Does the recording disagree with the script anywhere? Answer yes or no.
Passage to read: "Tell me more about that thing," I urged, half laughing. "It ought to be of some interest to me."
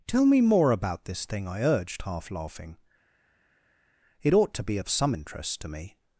yes